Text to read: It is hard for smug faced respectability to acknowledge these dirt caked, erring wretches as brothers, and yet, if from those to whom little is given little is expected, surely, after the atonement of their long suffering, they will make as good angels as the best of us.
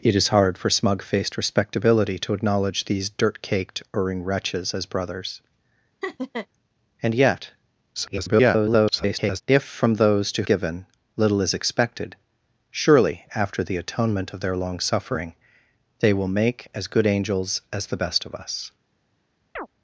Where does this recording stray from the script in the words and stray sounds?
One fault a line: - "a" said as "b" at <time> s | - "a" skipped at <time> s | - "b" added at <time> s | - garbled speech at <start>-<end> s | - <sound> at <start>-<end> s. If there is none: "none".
- laugh at 6.0-6.5 s
- garbled speech at 7.9-9.4 s
- "whom little is" skipped at 10.4 s
- chirp at 19.6-19.7 s